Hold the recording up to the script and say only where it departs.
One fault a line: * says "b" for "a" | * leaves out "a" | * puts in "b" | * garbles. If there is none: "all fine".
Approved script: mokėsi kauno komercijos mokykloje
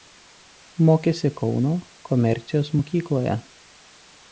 all fine